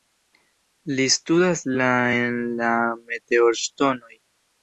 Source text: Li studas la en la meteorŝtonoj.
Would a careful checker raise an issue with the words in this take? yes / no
no